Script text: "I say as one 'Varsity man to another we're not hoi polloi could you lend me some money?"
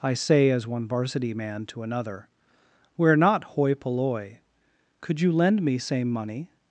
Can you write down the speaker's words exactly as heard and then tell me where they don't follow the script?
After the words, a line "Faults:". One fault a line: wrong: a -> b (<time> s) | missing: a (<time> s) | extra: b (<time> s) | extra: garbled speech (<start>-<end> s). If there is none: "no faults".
"I say as one 'Varsity man to another we're not hoi polloi could you lend me same money?"
Faults:
wrong: some -> same (5.8 s)